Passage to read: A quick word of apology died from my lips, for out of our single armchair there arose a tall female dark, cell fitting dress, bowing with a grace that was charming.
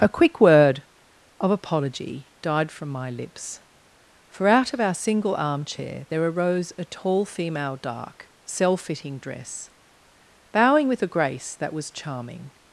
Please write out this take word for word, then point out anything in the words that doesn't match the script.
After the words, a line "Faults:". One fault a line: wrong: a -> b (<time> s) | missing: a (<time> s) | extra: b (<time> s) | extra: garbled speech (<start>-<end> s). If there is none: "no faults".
A quick word of apology died from my lips, for out of our single armchair there arose a tall female dark, cell fitting dress, bowing with a grace that was charming.
Faults:
no faults